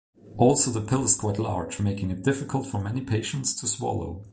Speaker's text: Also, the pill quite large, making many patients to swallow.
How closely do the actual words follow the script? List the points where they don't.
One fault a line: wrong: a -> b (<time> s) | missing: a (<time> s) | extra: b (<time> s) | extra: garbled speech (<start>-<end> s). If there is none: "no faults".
extra: is (1.0 s)
extra: it difficult for (2.1 s)